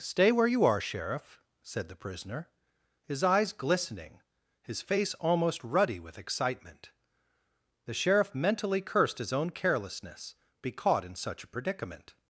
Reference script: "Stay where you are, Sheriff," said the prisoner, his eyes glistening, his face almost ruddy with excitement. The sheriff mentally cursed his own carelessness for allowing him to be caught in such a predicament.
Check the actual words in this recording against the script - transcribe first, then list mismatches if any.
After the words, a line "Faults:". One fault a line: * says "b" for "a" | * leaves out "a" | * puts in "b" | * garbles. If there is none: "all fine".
"Stay where you are, Sheriff," said the prisoner, his eyes glistening, his face almost ruddy with excitement. The sheriff mentally cursed his own carelessness be caught in such a predicament.
Faults:
* leaves out "for allowing him to"